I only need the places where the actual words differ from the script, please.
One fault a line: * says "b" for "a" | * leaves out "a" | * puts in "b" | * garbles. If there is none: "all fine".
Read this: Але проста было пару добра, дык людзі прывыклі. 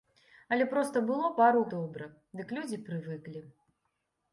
all fine